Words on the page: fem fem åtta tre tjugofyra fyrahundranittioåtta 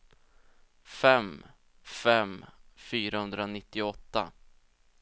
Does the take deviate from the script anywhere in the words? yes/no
yes